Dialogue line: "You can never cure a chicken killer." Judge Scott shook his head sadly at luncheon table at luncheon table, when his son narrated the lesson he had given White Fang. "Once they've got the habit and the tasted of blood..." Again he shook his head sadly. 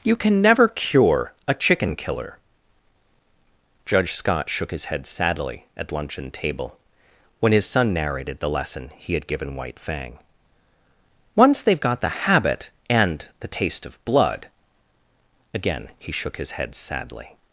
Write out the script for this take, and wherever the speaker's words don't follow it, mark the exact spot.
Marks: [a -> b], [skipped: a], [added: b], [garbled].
"You can never cure a chicken killer." Judge Scott shook his head sadly at luncheon table [skipped: at luncheon table,] when his son narrated the lesson he had given White Fang. "Once they've got the habit and the [tasted -> taste] of blood..." Again he shook his head sadly.